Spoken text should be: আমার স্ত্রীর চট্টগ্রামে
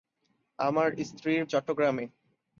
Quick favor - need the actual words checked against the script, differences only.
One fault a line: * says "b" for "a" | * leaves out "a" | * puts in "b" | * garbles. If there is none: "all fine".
all fine